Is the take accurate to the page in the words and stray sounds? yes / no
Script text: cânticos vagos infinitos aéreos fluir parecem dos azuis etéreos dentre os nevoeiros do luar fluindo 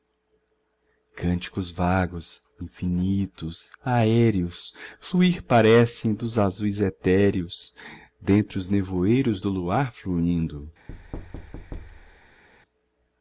no